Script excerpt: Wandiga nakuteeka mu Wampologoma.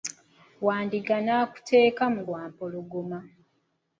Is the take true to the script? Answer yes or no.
yes